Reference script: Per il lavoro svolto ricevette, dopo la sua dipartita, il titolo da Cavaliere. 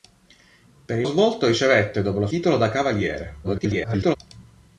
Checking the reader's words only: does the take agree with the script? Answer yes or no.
no